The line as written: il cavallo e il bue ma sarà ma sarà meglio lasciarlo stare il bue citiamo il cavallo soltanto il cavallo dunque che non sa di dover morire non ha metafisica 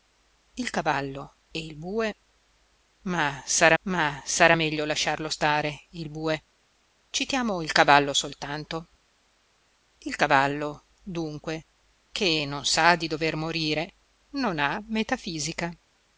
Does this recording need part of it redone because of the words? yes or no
no